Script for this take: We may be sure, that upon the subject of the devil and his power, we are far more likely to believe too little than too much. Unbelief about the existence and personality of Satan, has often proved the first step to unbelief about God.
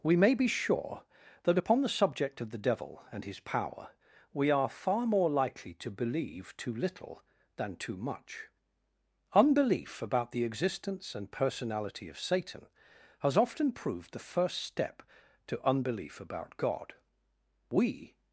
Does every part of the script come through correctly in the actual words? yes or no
no